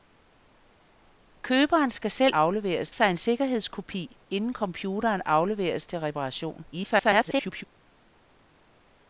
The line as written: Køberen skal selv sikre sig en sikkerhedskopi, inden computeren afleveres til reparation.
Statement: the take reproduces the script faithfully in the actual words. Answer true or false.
false